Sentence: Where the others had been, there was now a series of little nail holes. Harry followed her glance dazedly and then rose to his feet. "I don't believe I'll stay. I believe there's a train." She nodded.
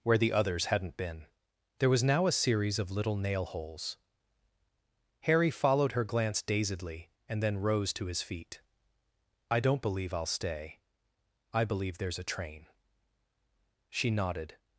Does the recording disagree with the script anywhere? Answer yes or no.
yes